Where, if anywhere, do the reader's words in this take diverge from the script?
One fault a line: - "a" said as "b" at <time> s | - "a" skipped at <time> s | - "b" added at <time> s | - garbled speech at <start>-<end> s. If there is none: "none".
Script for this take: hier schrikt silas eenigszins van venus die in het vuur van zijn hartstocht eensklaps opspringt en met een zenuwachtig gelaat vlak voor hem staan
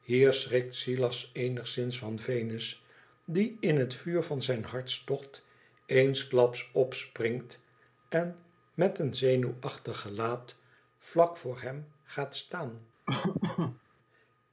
- "gaat" added at 12.0 s